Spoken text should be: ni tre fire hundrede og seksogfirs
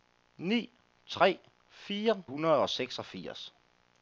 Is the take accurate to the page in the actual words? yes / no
yes